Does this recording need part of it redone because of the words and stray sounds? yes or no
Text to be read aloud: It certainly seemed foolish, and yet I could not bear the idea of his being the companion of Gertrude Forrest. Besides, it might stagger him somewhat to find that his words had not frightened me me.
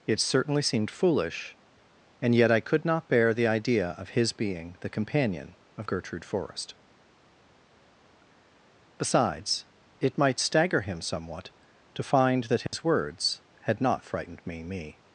yes